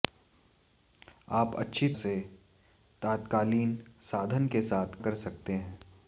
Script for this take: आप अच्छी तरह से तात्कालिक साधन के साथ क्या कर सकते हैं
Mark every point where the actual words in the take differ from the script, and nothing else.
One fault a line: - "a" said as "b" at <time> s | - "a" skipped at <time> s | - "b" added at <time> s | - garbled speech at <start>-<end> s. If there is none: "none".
- "तरह" skipped at 1.9 s
- "क्या" skipped at 5.0 s